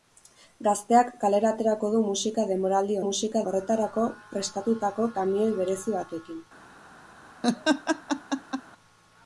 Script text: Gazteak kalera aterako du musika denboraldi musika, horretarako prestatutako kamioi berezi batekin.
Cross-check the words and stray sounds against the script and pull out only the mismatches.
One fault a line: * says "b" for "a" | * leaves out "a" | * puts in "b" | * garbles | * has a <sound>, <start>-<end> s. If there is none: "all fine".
* has a laugh, 7.4-8.6 s